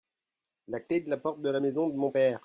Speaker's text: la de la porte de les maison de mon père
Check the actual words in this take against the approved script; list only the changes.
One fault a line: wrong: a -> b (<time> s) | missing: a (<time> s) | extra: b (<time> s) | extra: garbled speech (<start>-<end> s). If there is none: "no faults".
extra: clé (0.8 s)
wrong: les -> la (1.5 s)